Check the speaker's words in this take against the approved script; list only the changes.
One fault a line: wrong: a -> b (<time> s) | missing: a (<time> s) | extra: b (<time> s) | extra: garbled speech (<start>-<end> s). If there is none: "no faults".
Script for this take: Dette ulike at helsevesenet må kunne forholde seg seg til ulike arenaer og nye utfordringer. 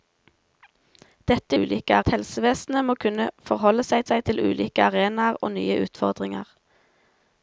no faults